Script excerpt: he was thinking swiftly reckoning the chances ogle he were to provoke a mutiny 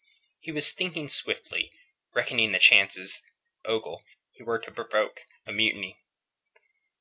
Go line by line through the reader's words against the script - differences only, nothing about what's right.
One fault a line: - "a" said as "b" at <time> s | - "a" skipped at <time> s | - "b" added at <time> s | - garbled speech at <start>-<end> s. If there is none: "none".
none